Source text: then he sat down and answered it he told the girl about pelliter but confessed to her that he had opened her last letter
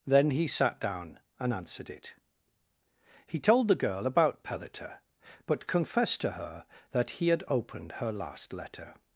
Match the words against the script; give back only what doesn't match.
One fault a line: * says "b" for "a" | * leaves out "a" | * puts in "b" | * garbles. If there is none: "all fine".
all fine